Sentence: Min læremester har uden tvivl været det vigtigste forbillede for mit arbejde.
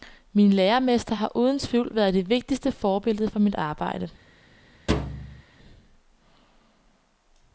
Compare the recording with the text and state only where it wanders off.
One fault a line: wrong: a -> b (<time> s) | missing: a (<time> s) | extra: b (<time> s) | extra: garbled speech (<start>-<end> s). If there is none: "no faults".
no faults